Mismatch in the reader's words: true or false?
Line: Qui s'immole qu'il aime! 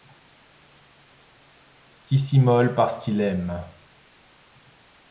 true